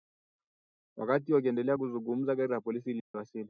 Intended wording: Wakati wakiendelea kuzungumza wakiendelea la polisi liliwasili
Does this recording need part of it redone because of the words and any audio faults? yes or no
yes